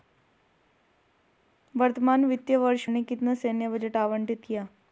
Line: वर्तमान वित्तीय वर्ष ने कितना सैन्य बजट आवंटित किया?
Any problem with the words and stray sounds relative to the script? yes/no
no